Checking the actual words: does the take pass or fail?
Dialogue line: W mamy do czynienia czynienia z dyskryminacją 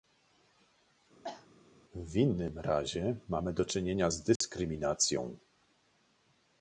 fail